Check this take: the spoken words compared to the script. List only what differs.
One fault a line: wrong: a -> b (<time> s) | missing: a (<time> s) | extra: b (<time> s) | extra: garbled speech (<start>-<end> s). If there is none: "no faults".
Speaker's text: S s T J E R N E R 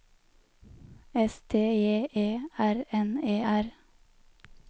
missing: s (1.4 s)